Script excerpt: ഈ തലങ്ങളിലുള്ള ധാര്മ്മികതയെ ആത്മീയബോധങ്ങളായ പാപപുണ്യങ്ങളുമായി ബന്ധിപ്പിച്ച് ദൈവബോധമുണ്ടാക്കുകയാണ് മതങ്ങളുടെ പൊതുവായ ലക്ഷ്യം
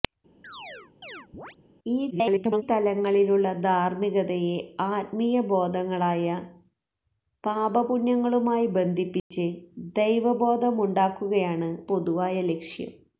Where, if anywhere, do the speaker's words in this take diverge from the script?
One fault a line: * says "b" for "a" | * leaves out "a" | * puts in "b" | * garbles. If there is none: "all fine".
* garbles
* leaves out "മതങ്ങളുടെ"